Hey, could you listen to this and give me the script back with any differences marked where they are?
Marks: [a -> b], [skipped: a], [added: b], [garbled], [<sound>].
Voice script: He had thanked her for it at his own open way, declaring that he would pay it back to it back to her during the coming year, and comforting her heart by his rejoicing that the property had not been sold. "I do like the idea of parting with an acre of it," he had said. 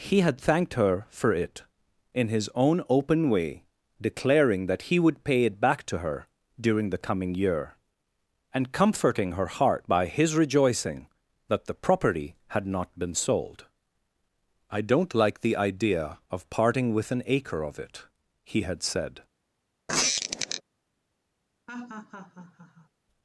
He had thanked her for it [at -> in] his own open way, declaring that he would pay it back to [skipped: it back to] her during the coming year, and comforting her heart by his rejoicing that the property had not been sold. "I [do -> don't] like the idea of parting with an acre of it," he had said. [squeak] [laugh]